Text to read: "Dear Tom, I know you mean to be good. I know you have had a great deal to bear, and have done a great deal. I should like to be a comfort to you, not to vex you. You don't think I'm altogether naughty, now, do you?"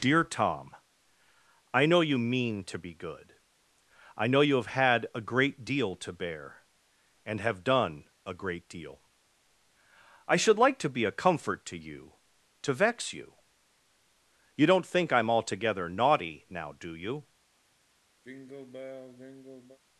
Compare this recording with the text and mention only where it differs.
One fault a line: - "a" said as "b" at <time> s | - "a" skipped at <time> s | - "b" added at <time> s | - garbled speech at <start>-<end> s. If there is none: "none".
- "not" skipped at 12.1 s